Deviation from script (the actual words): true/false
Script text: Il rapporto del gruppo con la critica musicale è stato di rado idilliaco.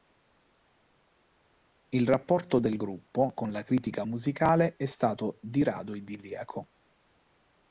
false